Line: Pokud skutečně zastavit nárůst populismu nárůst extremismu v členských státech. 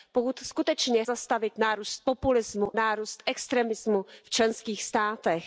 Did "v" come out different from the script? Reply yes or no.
no